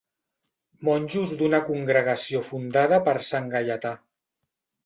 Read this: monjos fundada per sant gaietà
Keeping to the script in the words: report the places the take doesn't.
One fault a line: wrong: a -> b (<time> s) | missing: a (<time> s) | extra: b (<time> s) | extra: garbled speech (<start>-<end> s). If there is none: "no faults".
extra: d'una congregació (1.4 s)